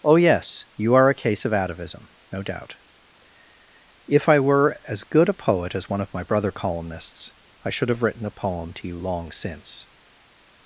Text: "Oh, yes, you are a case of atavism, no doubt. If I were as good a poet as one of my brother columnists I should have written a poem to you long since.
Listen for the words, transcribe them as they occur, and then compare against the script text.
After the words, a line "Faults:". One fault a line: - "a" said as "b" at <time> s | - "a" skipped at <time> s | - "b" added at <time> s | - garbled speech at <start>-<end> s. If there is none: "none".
"Oh, yes, you are a case of atavism, no doubt. If I were as good a poet as one of my brother columnists I should have written a poem to you long since.
Faults:
none